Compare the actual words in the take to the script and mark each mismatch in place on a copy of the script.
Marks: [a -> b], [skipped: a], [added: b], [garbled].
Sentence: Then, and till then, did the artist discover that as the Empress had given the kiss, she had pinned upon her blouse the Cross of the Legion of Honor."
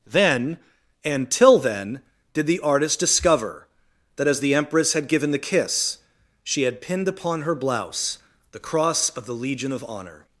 Then, and till then, did the artist discover that as the Empress had given the kiss, she had pinned upon her blouse the Cross of the Legion of Honor."